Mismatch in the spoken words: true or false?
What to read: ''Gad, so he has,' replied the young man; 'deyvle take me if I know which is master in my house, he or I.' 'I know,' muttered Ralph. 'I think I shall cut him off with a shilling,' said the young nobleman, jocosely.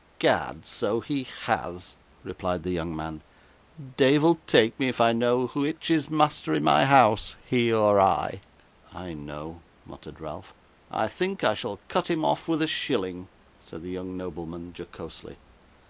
false